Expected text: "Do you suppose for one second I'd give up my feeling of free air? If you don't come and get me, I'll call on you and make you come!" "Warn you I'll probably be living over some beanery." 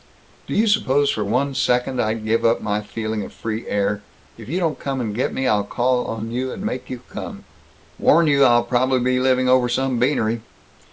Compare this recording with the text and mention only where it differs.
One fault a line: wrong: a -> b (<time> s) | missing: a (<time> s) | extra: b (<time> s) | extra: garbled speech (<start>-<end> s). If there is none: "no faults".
no faults